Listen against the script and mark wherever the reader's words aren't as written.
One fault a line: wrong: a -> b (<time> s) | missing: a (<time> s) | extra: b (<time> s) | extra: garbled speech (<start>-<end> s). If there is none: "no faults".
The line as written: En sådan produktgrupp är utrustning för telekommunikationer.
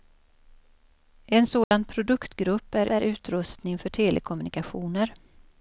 extra: är (2.9 s)